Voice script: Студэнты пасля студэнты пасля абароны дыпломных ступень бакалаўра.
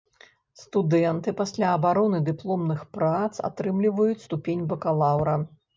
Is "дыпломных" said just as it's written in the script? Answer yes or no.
no